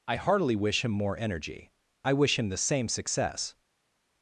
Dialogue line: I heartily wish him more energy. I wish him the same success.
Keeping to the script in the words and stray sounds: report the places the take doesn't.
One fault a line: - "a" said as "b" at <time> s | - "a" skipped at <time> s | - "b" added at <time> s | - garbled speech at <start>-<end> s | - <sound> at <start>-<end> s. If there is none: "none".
none